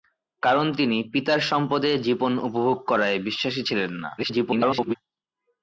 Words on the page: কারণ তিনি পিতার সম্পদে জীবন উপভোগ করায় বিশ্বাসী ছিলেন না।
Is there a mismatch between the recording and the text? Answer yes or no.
yes